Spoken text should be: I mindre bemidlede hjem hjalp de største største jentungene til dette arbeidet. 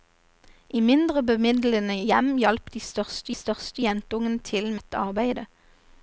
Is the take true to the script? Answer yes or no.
yes